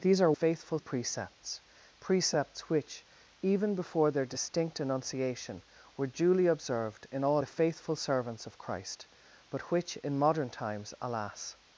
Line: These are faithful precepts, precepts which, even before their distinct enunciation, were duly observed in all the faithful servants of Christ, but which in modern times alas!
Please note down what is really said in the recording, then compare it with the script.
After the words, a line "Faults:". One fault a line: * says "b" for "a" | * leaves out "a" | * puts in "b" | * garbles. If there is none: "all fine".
These are faithful precepts, precepts which, even before their distinct enunciation, were duly observed in all the faithful servants of Christ, but which in modern times alas!
Faults:
all fine